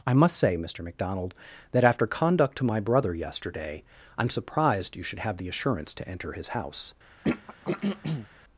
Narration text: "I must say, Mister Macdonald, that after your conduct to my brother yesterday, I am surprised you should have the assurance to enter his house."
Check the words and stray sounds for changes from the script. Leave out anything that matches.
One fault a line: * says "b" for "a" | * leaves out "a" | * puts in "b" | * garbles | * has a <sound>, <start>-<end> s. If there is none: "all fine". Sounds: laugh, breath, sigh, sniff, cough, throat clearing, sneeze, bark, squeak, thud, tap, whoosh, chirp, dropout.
* leaves out "your"
* has a throat clearing, 7.2-8.3 s